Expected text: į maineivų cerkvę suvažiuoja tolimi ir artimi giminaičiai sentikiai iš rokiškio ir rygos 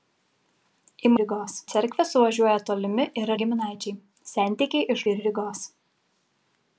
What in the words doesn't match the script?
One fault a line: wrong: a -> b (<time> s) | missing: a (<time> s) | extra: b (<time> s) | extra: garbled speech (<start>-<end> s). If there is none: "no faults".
wrong: maineivų -> rygos (1.2 s)
missing: artimi (3.3 s)
missing: rokiškio (5.1 s)